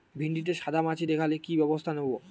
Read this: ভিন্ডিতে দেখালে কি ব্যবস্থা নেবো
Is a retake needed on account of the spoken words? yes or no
yes